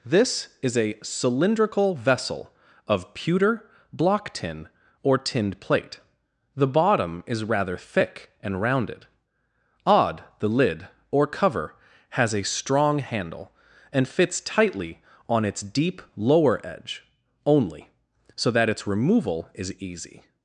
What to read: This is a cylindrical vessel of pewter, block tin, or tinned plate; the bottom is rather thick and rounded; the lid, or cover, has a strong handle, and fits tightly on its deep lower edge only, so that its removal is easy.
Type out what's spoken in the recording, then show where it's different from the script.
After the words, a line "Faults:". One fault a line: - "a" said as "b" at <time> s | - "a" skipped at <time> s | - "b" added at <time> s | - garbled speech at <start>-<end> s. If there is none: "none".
This is a cylindrical vessel of pewter, block tin, or tinned plate; the bottom is rather thick and rounded; odd the lid, or cover, has a strong handle, and fits tightly on its deep lower edge only, so that its removal is easy.
Faults:
- "odd" added at 9.9 s